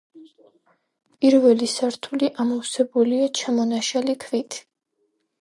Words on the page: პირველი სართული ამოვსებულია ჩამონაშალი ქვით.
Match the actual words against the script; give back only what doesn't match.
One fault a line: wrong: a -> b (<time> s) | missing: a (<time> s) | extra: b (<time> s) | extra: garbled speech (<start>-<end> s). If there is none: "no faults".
no faults